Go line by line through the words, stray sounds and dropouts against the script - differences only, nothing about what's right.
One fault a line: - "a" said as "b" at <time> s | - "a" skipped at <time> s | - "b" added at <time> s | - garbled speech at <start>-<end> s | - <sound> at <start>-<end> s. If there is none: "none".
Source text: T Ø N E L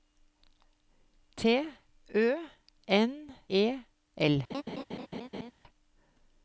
- laugh at 4.5-5.5 s